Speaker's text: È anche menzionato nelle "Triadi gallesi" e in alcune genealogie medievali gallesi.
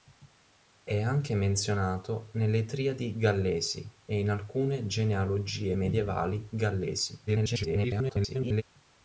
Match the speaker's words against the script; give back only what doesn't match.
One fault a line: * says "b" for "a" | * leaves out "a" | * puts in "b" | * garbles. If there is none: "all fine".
* garbles